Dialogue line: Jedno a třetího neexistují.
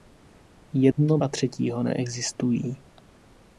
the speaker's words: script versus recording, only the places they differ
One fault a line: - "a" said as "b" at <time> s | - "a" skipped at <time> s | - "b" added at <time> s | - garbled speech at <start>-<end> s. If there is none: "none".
none